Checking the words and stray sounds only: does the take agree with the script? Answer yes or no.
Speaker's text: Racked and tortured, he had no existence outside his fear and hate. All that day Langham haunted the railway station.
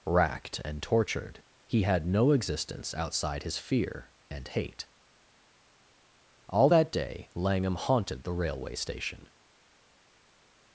yes